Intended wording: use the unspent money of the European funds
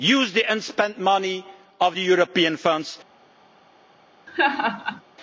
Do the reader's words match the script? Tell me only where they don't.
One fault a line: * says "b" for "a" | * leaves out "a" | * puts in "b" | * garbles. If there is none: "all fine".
all fine